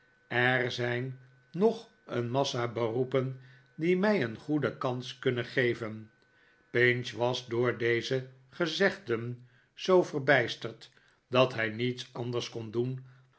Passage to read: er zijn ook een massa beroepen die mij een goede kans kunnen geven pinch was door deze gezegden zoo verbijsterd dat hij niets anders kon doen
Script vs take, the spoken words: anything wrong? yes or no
yes